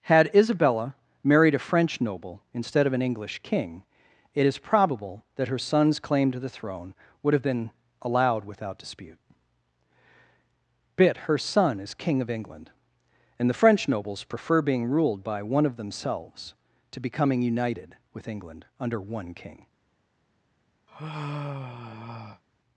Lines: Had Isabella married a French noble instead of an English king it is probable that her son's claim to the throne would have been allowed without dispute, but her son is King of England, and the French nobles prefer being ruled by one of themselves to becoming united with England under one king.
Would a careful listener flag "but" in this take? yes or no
yes